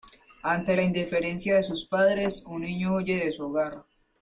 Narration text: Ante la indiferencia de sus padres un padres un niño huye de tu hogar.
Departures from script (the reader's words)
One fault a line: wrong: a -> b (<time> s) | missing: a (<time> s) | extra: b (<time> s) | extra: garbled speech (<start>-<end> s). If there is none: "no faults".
missing: padres un (2.6 s)
wrong: tu -> su (3.3 s)